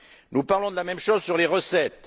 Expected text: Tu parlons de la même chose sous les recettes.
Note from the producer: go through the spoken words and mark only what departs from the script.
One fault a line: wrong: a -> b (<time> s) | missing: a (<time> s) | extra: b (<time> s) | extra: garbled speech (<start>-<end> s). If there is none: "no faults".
wrong: Tu -> Nous (0.3 s)
wrong: sous -> sur (1.2 s)